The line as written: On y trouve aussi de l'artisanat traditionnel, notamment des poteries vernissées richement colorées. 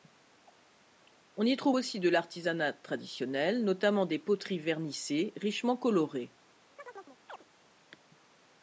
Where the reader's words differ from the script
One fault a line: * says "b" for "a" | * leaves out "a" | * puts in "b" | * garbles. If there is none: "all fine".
all fine